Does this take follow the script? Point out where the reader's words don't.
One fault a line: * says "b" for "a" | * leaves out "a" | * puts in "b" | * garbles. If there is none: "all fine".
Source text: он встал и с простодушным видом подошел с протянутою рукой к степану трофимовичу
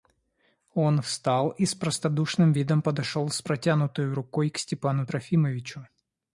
all fine